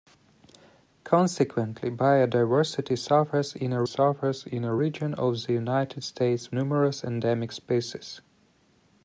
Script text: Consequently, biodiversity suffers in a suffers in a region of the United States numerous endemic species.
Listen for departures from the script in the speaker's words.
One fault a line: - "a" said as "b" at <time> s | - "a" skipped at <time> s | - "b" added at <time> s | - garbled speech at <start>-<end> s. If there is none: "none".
none